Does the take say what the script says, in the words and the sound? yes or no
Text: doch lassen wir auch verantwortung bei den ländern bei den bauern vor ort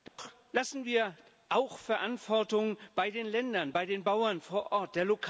no